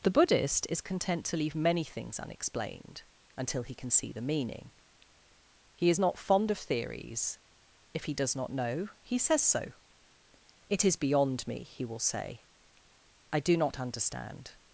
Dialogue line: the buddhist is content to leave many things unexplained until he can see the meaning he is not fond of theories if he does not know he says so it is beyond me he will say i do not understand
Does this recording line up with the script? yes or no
yes